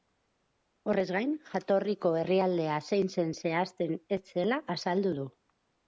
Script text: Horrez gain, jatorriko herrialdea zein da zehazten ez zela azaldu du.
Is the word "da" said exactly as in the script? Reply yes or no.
no